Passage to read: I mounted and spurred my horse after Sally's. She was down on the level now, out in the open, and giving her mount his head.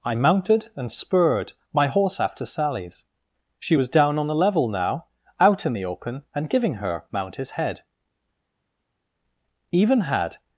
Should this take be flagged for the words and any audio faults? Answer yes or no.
yes